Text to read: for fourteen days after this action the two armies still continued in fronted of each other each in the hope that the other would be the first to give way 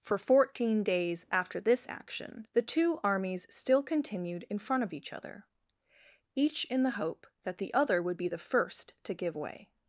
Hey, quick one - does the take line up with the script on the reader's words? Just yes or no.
no